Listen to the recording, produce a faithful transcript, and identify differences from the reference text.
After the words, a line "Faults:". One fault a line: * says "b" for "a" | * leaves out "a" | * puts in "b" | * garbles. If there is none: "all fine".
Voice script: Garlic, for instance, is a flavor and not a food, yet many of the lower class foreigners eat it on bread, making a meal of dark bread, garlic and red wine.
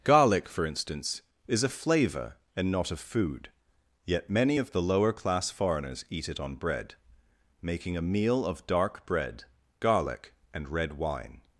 Garlic, for instance, is a flavor and not a food, yet many of the lower class foreigners eat it on bread, making a meal of dark bread, garlic and red wine.
Faults:
all fine